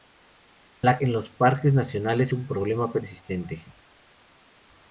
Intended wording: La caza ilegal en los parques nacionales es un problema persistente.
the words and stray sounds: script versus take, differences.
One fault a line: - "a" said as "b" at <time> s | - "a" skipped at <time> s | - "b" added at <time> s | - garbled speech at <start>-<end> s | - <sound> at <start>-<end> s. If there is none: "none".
- "caza ilegal" skipped at 1.0 s
- "es" skipped at 2.3 s